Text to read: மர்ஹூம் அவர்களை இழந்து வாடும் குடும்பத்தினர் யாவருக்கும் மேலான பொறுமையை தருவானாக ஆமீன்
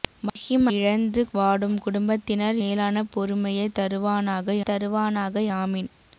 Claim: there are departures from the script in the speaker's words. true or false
true